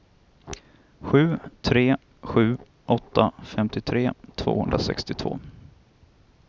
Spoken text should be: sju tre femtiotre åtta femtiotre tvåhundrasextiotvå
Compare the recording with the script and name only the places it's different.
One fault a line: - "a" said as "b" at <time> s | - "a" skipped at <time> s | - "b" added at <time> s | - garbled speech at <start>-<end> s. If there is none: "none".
- "femtiotre" said as "sju" at 2.2 s